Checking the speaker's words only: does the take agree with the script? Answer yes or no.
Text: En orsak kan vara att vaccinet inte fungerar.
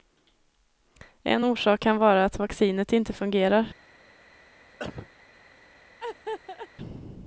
yes